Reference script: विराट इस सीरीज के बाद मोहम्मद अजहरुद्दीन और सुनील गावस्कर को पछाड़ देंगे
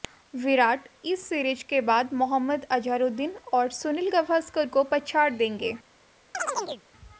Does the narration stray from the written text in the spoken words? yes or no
no